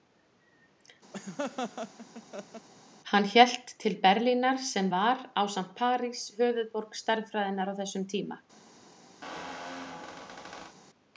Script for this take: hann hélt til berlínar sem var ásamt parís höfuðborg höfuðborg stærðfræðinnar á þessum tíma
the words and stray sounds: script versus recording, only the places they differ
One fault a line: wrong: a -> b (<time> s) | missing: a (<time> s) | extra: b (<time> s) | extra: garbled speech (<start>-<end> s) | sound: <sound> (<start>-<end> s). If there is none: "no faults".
sound: laugh (1.1-2.7 s)
missing: höfuðborg (7.0 s)
sound: squeak (9.2-10.8 s)